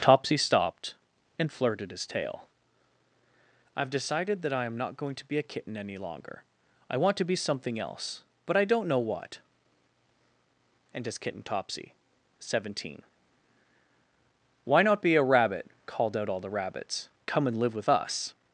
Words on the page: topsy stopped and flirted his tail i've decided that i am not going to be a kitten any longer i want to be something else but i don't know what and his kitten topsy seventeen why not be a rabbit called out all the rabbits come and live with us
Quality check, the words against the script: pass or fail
pass